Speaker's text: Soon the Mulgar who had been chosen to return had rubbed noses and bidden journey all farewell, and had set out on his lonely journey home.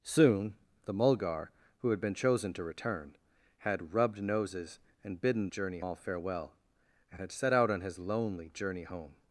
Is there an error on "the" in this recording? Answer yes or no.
no